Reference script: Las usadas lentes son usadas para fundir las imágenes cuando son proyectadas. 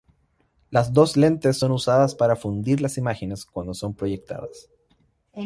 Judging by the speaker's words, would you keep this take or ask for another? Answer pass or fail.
fail